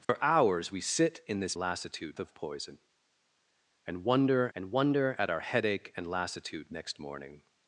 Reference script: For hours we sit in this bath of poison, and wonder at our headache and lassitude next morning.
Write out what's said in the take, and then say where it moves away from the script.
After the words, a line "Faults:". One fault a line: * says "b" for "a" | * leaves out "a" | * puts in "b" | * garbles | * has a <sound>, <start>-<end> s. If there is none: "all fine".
For hours we sit in this lassitude of poison, and wonder and wonder at our headache and lassitude next morning.
Faults:
* has a dropout, 0.0-0.1 s
* says "lassitude" for "bath"
* puts in "and wonder"